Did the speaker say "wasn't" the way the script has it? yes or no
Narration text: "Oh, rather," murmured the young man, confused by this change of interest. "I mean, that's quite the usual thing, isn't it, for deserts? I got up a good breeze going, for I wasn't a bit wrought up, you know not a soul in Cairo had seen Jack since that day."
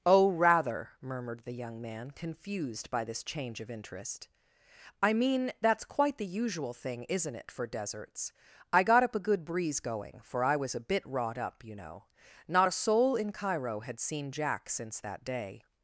no